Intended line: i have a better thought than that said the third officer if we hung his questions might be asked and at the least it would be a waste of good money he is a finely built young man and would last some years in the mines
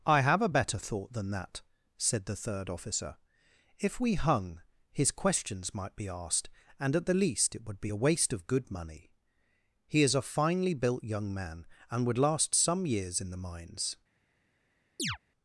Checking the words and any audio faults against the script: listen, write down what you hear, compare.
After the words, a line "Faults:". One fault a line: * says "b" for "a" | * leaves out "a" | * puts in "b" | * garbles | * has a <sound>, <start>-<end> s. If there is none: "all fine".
i have a better thought than that said the third officer if we hung his questions might be asked and at the least it would be a waste of good money he is a finely built young man and would last some years in the mines
Faults:
* has a chirp, 15.0-15.2 s